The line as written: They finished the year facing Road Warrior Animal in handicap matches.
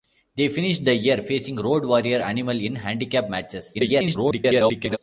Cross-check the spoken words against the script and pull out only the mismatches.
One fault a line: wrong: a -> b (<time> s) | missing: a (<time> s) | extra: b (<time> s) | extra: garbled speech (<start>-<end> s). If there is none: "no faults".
extra: garbled speech (3.7-5.0 s)